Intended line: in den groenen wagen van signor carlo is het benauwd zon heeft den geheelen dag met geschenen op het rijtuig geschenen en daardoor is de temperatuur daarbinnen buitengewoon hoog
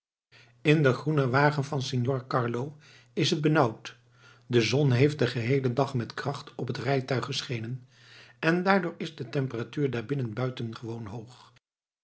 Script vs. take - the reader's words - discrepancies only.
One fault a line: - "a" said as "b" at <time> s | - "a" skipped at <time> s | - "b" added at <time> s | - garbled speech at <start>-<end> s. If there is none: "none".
- "de" added at 4.5 s
- "geschenen" said as "kracht" at 6.1 s